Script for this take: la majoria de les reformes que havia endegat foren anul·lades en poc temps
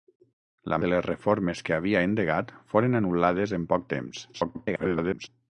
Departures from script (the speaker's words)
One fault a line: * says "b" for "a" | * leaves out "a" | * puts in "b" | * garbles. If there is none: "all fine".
* leaves out "majoria"
* garbles